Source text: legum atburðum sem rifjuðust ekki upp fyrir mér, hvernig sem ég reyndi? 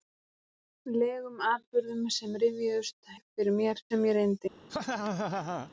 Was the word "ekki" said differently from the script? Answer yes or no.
yes